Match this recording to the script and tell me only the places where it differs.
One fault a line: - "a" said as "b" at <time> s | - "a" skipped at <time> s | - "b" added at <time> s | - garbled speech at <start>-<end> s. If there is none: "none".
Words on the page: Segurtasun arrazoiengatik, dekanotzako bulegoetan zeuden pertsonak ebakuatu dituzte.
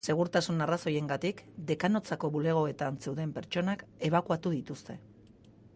none